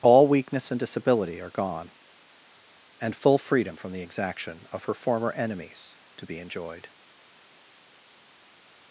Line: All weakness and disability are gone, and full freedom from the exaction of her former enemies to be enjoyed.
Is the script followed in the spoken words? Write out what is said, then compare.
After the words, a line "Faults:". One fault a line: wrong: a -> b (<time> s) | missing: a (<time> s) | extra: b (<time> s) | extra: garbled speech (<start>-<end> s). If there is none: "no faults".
All weakness and disability are gone, and full freedom from the exaction of her former enemies to be enjoyed.
Faults:
no faults